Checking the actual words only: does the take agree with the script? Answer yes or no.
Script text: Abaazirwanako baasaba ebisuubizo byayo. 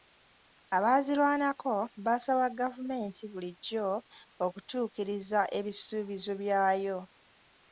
no